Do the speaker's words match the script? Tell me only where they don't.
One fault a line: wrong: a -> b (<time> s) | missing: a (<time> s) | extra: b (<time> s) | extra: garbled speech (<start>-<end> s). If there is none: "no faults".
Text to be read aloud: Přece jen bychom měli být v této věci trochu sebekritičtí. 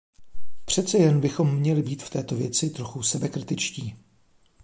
no faults